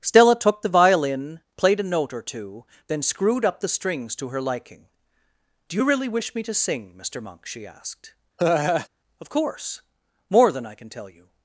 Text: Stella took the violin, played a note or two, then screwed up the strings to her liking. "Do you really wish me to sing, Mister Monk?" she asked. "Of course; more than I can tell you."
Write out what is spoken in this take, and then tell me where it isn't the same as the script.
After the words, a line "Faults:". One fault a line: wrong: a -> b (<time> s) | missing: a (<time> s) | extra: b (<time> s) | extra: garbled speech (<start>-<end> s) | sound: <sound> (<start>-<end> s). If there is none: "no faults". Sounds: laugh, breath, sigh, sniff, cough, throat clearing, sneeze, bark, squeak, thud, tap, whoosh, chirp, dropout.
Stella took the violin, played a note or two, then screwed up the strings to her liking. "Do you really wish me to sing, Mister Monk?" she asked. "Of course; more than I can tell you."
Faults:
sound: laugh (8.4-8.9 s)